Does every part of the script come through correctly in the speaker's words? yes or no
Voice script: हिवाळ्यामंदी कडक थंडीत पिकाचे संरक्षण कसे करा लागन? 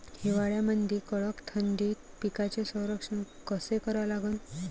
yes